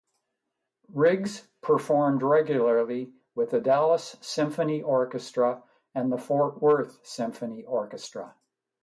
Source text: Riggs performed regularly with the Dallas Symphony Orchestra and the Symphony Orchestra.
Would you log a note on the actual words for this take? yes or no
yes